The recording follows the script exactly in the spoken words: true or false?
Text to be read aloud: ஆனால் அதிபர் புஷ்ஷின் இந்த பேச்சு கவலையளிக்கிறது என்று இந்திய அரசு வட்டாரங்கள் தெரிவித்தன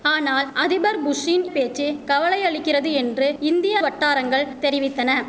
false